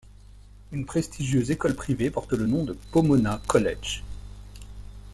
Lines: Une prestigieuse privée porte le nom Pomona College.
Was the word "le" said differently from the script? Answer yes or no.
no